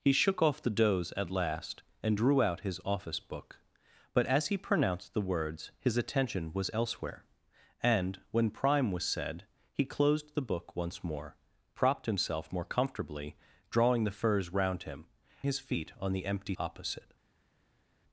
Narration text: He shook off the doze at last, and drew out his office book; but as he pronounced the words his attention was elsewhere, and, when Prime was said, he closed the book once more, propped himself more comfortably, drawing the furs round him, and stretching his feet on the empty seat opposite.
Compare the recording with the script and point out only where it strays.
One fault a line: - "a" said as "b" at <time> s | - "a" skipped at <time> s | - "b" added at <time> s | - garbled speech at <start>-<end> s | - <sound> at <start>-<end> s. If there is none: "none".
- "and stretching" skipped at 15.0 s
- "seat" skipped at 16.5 s